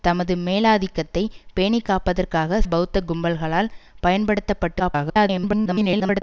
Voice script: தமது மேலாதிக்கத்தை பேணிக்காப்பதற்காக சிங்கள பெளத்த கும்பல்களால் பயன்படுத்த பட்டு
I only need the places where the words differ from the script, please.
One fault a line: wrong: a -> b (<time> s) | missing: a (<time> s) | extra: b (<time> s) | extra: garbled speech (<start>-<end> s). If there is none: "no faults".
missing: சிங்கள (2.6 s)
extra: garbled speech (4.8-6.2 s)